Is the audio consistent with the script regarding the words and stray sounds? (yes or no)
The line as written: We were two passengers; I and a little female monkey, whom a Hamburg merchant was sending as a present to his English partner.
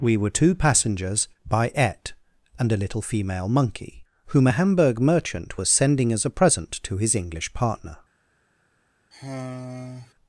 no